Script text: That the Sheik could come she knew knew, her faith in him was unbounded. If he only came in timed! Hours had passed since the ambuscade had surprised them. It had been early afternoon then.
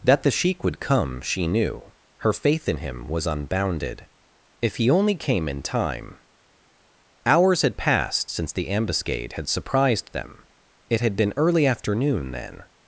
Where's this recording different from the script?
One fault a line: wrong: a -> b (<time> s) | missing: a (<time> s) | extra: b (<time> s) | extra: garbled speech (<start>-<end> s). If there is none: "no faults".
wrong: could -> would (0.6 s)
missing: knew (1.9 s)
wrong: timed -> time (5.6 s)